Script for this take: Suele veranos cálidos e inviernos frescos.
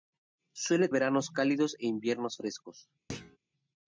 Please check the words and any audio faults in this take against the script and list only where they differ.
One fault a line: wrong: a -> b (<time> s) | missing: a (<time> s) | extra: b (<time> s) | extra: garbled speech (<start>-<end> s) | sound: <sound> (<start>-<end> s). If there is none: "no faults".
sound: thud (3.1-3.4 s)